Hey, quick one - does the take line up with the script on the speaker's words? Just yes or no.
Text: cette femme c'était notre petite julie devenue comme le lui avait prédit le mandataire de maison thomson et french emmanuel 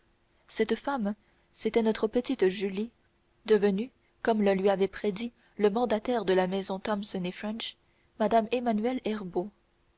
no